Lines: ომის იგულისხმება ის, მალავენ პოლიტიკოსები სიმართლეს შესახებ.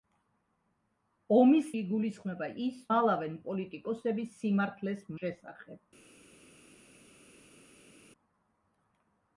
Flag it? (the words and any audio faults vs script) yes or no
no